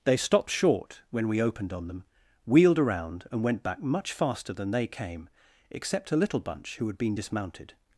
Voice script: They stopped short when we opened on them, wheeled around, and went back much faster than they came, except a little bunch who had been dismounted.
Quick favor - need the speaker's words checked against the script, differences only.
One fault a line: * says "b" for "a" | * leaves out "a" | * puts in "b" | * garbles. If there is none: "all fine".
all fine